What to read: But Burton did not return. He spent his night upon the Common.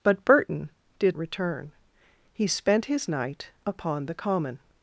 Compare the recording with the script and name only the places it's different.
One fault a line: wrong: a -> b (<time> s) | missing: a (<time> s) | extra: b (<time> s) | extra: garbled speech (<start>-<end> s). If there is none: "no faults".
missing: not (1.2 s)